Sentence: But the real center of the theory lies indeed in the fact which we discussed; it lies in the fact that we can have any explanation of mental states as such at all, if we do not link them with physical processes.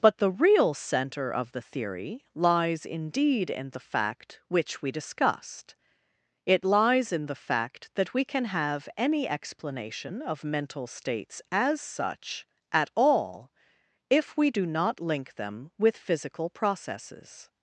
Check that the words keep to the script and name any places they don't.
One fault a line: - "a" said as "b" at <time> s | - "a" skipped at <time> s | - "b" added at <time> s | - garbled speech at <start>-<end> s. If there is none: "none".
none